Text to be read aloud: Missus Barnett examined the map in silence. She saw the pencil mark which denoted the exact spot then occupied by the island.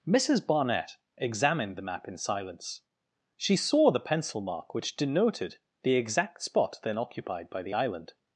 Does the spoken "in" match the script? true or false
true